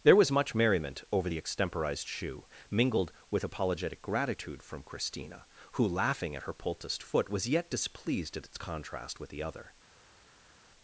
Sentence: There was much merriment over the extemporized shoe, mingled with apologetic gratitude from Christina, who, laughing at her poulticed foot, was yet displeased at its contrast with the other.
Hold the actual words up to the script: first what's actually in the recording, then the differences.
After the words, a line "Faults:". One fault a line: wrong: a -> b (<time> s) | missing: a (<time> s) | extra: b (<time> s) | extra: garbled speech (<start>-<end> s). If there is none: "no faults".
There was much merriment over the extemporized shoe, mingled with apologetic gratitude from Christina, who, laughing at her poulticed foot, was yet displeased at its contrast with the other.
Faults:
no faults